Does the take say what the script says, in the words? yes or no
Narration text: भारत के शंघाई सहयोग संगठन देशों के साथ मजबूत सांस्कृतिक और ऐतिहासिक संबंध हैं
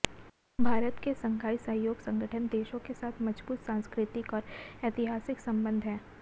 yes